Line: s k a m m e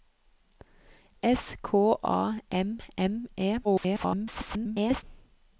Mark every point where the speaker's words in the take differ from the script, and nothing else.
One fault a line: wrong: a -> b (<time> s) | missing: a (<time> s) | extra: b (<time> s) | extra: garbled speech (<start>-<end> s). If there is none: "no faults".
extra: garbled speech (3.6-5.0 s)